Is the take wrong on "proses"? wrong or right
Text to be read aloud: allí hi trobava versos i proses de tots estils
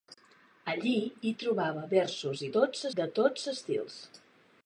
wrong